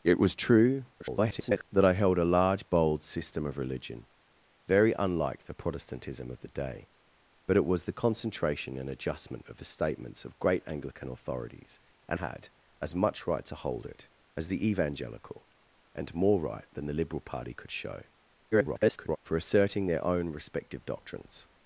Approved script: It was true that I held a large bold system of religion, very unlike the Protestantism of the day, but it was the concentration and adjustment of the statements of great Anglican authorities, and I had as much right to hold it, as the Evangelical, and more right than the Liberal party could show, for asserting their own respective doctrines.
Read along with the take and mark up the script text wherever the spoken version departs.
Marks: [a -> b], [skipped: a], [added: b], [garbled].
It was true [garbled] that I held a large bold system of religion, very unlike the Protestantism of the day, but it was the concentration and adjustment of the statements of great Anglican authorities, and [skipped: I] had as much right to hold it, as the Evangelical, and more right than the Liberal party could show, [garbled] for asserting their own respective doctrines.